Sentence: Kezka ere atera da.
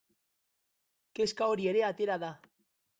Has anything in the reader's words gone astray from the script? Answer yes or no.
yes